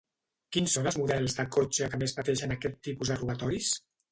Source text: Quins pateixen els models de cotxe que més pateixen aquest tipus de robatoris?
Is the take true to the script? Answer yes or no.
no